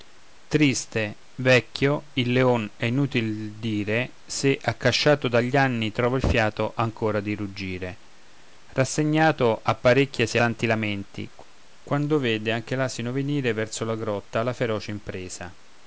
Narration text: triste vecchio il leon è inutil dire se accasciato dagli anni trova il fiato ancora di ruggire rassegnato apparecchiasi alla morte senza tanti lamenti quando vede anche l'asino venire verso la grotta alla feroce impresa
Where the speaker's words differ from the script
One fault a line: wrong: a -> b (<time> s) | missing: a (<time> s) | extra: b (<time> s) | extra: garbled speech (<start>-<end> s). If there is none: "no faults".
missing: alla morte senza (10.4 s)